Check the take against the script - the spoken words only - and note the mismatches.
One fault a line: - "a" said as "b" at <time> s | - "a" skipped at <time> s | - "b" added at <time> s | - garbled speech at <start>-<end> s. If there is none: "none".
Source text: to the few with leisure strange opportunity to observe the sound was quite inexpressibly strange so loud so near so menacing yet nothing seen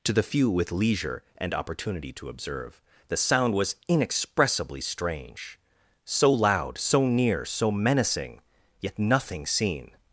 - "strange" said as "and" at 1.4 s
- "quite" skipped at 3.8 s